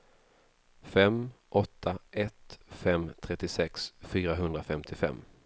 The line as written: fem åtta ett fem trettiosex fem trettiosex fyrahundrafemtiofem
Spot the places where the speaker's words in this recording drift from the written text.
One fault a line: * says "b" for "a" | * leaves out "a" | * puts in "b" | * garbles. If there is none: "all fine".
* leaves out "fem trettiosex"